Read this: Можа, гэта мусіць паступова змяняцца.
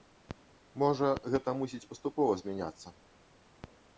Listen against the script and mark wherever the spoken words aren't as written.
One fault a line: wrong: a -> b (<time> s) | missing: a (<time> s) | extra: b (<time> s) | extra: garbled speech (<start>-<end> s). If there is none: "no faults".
no faults